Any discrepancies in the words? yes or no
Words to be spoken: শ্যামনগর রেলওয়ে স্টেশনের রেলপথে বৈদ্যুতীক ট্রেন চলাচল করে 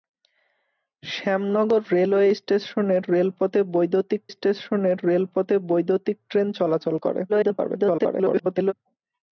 yes